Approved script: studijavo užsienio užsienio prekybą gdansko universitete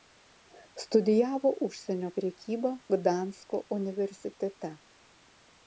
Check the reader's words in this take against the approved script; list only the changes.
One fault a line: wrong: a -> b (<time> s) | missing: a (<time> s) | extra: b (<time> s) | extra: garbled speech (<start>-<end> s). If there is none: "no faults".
missing: užsienio (2.1 s)